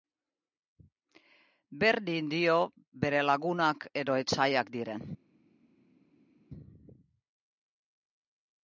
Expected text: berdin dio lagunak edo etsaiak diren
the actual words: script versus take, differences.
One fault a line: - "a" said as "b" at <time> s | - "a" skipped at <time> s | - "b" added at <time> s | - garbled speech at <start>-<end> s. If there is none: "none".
- "bere" added at 3.0 s